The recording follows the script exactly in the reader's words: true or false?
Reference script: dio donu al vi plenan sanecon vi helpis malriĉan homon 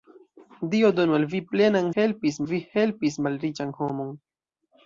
false